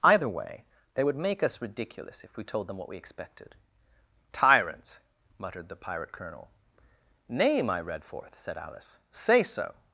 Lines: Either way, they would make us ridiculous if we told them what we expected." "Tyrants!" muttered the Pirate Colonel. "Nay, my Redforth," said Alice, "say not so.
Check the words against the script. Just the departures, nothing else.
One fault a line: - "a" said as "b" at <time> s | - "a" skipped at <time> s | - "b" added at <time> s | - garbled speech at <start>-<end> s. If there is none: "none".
- "not" skipped at 9.4 s